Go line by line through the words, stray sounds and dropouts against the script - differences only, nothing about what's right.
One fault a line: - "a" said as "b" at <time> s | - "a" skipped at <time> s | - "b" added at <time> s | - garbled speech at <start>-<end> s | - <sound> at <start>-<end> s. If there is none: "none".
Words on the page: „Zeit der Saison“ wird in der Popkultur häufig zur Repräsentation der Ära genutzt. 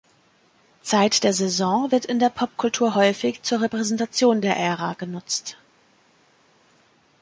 none